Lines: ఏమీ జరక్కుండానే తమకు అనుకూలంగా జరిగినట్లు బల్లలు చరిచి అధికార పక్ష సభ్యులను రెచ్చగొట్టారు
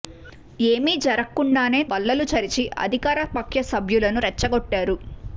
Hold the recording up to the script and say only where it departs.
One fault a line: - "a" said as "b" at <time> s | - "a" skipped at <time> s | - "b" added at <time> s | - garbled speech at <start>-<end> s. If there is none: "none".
- "తమకు అనుకూలంగా జరిగినట్లు" skipped at 1.8 s